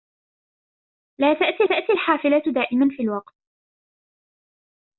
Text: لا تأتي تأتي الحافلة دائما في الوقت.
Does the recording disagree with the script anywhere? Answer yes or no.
no